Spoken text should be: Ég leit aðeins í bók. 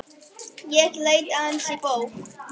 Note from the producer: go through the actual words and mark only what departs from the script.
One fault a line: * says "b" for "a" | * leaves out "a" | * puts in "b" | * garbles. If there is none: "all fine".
all fine